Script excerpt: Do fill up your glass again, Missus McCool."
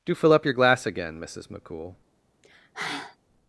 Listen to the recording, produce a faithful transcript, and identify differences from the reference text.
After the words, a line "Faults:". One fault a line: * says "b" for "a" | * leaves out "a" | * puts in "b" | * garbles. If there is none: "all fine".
Do fill up your glass again, Missus McCool."
Faults:
all fine